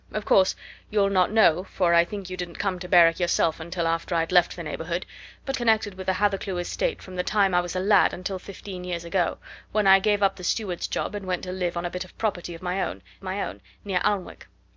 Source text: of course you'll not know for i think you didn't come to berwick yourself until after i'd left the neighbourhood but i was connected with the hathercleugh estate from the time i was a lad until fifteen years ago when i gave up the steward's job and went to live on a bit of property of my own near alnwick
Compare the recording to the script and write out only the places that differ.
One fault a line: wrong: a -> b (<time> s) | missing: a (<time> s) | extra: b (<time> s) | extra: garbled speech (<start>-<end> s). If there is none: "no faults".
missing: i was (5.6 s)
extra: my own (13.2 s)